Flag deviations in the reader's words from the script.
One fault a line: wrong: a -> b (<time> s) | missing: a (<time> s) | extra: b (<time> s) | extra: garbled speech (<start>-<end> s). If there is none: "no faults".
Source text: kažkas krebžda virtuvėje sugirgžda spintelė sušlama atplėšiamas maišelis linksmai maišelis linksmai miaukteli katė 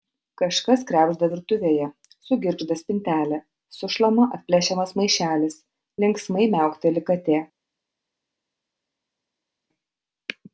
missing: maišelis linksmai (6.5 s)